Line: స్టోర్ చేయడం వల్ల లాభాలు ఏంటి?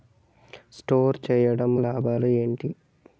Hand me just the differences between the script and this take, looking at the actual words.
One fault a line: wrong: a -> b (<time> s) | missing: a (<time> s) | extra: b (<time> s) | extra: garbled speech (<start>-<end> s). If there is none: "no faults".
missing: వల్ల (1.8 s)